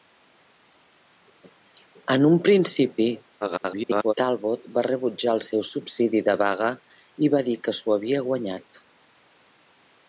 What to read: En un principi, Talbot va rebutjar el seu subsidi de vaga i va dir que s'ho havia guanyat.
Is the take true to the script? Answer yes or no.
no